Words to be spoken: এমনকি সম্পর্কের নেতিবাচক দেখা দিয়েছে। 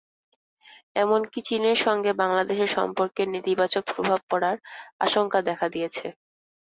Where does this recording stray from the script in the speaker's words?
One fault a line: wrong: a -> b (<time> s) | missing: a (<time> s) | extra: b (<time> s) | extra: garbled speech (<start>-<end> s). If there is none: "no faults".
extra: চীনের সঙ্গে বাংলাদেশের (1.5 s)
extra: প্রভাব পড়ার আশঙ্কা (3.9 s)